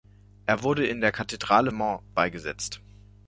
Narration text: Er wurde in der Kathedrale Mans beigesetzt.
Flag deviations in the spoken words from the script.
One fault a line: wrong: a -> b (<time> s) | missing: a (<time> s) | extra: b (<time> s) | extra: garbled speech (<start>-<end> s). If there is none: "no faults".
no faults